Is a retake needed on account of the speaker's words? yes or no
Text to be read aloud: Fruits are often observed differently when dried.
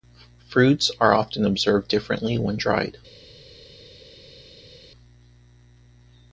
no